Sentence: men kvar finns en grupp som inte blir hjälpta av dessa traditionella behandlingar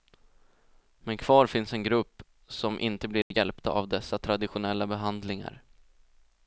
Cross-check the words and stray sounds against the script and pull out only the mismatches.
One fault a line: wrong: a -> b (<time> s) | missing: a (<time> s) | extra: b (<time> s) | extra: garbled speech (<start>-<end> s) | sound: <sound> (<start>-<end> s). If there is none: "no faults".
sound: dropout (3.2-3.3 s)